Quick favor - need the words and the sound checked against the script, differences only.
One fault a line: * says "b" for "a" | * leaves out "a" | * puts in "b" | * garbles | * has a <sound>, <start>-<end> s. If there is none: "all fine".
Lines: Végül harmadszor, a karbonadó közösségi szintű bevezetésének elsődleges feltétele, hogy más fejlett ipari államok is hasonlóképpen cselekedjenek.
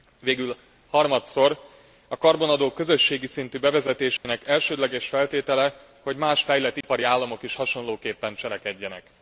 * has a dropout, 4.2-4.2 s
* has a dropout, 6.8-6.8 s